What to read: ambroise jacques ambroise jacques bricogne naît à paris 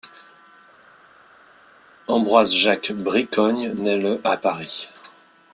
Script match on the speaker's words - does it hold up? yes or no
no